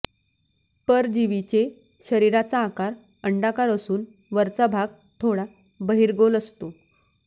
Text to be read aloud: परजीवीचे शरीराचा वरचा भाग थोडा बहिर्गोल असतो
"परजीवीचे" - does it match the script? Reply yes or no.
yes